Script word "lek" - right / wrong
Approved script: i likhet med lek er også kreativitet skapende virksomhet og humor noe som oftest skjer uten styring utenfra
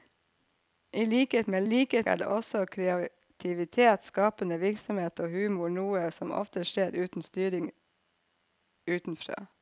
wrong